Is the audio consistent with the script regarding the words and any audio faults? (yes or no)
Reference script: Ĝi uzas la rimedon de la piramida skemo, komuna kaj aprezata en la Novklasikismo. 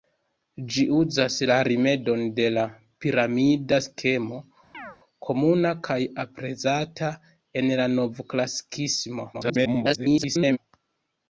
no